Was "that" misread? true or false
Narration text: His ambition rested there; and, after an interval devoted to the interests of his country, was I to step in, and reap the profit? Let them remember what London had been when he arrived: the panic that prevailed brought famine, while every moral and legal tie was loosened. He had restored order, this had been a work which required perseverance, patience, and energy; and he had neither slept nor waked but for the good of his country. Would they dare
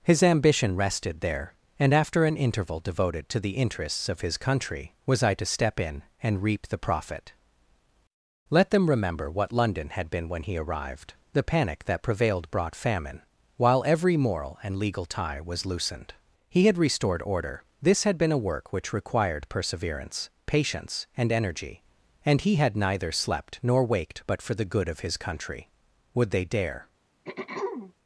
false